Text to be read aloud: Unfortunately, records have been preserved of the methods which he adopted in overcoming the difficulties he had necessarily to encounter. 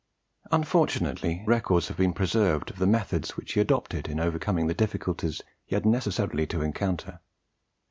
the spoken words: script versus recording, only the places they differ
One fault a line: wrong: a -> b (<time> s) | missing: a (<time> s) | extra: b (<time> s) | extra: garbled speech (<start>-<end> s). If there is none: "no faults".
no faults